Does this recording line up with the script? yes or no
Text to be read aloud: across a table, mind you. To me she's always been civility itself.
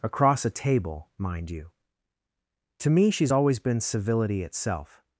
yes